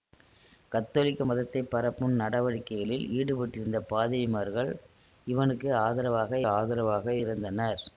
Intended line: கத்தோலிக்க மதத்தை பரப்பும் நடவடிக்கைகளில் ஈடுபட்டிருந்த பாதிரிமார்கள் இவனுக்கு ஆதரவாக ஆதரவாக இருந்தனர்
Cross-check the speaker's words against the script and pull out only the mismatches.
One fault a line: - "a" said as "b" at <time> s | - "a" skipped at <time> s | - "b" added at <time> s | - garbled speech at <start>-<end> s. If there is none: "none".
none